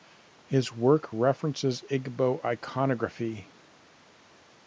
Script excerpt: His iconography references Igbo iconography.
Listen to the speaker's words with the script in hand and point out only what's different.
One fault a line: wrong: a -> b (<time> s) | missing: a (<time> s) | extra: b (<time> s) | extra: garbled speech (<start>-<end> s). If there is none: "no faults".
wrong: iconography -> work (0.7 s)